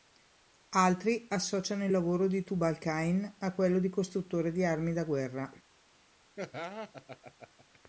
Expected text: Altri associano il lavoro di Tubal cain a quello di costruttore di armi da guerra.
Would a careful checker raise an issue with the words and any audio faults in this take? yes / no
yes